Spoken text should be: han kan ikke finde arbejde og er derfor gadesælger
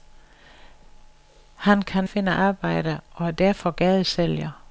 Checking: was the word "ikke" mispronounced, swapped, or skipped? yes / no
yes